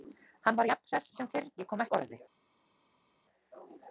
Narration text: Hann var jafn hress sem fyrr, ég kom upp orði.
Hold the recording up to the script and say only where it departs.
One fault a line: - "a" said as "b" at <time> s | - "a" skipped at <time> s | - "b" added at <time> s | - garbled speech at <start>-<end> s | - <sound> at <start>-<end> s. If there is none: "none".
none